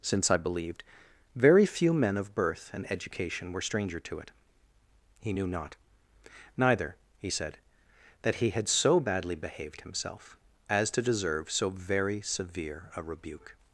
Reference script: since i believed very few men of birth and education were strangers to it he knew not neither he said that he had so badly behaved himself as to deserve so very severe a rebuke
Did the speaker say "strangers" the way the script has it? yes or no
no